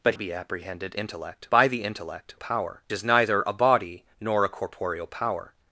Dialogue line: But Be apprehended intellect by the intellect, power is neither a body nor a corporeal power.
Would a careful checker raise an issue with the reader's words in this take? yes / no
no